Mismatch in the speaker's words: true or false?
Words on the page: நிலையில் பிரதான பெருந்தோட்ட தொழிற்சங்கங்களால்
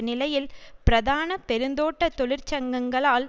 false